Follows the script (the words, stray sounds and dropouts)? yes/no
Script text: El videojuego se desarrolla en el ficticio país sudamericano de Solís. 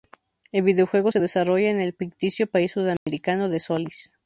no